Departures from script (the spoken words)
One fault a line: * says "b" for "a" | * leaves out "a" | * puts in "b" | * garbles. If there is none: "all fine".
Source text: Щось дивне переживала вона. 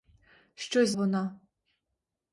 * leaves out "дивне переживала"